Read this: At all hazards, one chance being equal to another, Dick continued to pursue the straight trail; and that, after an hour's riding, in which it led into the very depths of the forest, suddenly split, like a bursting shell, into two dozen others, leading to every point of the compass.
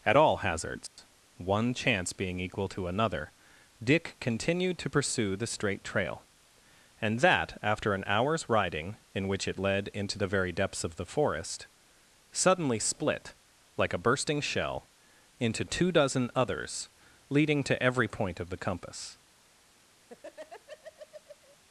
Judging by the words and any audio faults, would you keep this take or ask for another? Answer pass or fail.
fail